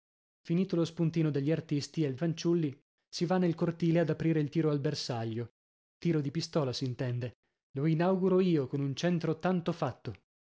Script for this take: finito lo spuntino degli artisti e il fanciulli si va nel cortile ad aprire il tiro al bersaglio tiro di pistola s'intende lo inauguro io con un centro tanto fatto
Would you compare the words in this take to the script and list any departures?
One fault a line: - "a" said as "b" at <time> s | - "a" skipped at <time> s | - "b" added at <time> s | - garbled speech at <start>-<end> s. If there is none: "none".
none